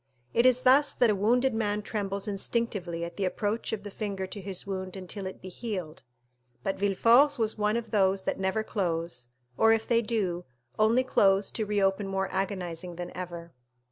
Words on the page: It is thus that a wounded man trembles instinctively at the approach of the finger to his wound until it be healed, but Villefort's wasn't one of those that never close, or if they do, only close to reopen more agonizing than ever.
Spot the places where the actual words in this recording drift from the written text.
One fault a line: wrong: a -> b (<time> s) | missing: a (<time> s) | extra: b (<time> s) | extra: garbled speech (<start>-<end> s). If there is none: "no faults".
wrong: wasn't -> was (7.4 s)